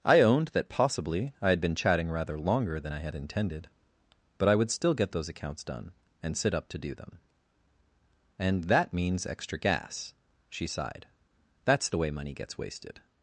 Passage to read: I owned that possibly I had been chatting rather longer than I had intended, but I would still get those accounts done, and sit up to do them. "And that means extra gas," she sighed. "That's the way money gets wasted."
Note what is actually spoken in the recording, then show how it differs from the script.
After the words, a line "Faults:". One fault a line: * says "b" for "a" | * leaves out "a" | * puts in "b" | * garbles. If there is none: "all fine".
I owned that possibly I had been chatting rather longer than I had intended, but I would still get those accounts done, and sit up to do them. "And that means extra gas," she sighed. "That's the way money gets wasted."
Faults:
all fine